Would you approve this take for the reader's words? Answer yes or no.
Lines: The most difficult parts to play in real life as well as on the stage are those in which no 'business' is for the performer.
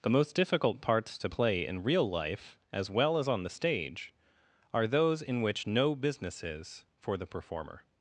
yes